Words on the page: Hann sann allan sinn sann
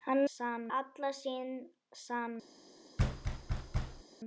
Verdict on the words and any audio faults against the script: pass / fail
fail